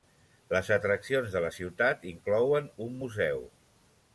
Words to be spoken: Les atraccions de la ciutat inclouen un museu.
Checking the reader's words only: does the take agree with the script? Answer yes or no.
yes